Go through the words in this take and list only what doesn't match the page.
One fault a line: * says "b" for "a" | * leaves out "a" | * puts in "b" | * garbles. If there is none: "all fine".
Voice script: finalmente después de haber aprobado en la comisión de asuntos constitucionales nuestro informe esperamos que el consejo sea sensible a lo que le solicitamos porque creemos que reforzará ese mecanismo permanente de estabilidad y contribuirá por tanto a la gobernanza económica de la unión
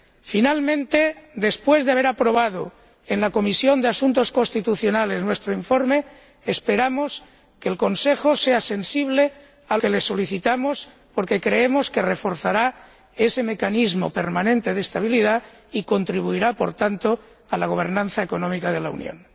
* leaves out "lo"